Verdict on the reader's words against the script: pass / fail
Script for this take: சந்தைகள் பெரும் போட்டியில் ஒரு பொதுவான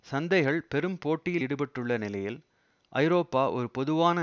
fail